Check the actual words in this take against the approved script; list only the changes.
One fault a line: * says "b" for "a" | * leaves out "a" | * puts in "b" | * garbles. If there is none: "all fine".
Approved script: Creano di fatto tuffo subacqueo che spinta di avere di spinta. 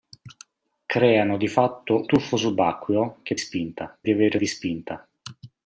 all fine